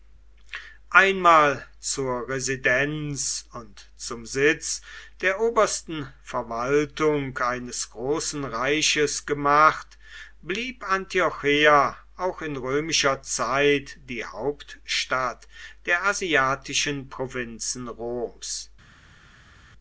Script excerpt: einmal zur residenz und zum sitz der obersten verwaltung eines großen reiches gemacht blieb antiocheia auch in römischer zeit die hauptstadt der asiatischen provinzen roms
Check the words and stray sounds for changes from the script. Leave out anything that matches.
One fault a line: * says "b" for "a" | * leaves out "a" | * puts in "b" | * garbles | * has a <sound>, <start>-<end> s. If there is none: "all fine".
all fine